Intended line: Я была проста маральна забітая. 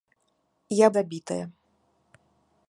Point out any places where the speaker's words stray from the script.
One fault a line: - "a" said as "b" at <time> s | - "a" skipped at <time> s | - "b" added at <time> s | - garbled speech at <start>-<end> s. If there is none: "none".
- "была проста маральна" skipped at 0.9 s